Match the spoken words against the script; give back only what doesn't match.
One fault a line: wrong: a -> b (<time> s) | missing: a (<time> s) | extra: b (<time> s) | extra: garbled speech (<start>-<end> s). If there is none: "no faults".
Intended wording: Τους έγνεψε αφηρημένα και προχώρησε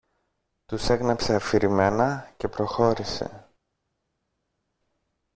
no faults